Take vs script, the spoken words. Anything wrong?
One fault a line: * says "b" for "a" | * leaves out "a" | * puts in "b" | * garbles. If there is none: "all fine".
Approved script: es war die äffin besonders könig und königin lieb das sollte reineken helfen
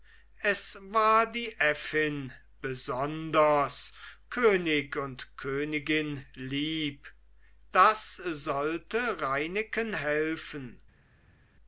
all fine